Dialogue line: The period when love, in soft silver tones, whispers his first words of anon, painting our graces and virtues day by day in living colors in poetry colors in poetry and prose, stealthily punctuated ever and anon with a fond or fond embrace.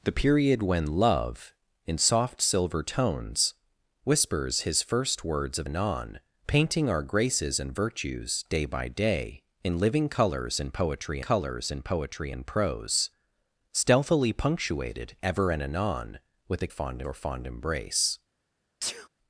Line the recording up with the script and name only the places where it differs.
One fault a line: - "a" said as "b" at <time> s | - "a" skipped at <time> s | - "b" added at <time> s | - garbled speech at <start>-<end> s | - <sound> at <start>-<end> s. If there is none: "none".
- sneeze at 18.8-19.1 s